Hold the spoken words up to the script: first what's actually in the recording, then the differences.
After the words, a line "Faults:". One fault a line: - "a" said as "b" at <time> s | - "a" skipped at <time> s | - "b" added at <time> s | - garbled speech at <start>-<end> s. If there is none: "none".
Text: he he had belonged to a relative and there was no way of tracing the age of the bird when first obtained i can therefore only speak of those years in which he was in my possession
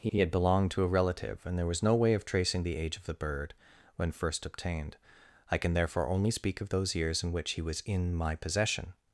he he had belonged to a relative and there was no way of tracing the age of the bird when first obtained i can therefore only speak of those years in which he was in my possession
Faults:
none